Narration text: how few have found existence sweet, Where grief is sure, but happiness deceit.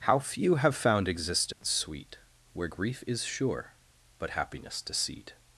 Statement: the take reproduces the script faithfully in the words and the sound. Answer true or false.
false